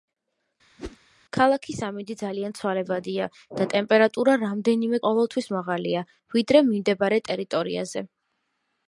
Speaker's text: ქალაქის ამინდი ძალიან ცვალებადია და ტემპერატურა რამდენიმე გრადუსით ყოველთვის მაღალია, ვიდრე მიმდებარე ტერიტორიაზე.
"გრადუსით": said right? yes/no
no